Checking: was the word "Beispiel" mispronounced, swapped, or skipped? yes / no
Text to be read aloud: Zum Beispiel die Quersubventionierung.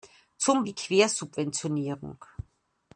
yes